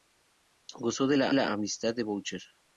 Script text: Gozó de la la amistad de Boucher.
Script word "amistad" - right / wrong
right